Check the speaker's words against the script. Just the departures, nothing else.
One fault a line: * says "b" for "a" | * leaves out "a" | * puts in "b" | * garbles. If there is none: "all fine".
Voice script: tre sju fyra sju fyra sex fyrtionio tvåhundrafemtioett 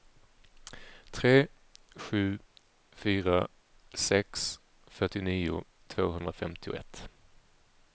* leaves out "sju fyra"